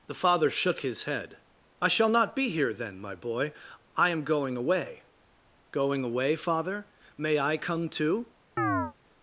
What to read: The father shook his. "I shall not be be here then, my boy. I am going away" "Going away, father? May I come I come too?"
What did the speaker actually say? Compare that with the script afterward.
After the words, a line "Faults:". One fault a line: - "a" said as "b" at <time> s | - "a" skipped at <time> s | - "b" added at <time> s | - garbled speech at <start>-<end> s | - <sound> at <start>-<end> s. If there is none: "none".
The father shook his head. "I shall not be here then, my boy. I am going away" "Going away, father? May I come too?"
Faults:
- "head" added at 1.0 s
- "be" skipped at 2.5 s
- "I come" skipped at 7.9 s
- chirp at 8.6-8.9 s